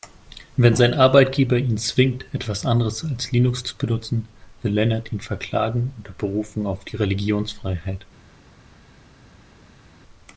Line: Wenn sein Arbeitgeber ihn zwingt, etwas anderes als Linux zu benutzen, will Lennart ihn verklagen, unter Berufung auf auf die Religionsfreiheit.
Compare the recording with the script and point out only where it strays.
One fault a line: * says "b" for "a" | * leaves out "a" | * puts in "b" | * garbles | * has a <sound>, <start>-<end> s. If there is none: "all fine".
* leaves out "auf"